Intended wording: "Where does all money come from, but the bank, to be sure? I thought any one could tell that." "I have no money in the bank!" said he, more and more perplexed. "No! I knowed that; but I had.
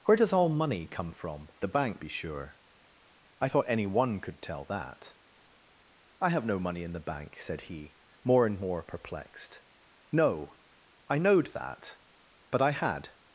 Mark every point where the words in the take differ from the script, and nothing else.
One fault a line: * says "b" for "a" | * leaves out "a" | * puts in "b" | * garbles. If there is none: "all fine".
* leaves out "but"
* leaves out "to"